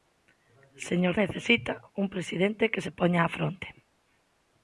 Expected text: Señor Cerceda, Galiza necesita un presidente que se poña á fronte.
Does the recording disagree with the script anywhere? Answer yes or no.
yes